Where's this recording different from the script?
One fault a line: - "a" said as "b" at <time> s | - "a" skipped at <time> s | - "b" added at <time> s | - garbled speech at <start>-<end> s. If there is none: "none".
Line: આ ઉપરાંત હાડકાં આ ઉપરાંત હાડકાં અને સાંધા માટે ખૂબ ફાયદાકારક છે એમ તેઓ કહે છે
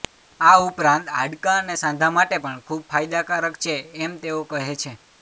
- "આ ઉપરાંત હાડકાં" skipped at 1.6 s
- "પણ" added at 2.4 s